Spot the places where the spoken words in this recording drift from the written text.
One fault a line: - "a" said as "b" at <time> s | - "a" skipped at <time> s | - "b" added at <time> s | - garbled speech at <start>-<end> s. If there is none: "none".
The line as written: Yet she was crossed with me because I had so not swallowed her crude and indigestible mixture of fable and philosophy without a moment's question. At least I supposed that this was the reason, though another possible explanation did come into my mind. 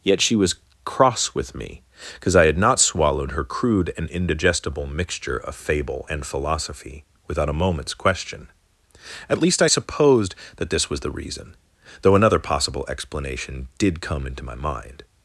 - "crossed" said as "cross" at 0.8 s
- "so" skipped at 2.6 s